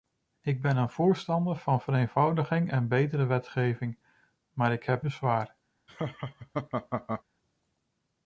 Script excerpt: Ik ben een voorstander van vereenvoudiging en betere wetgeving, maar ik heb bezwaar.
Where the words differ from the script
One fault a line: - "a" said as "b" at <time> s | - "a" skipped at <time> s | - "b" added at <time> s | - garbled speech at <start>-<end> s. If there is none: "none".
none